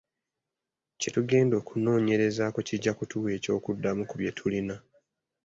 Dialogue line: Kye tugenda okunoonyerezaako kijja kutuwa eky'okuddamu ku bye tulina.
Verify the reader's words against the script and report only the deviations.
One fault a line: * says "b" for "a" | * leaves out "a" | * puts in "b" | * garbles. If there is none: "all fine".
all fine